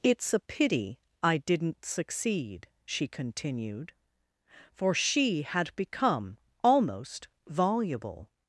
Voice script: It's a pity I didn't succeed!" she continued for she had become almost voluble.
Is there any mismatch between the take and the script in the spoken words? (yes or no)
no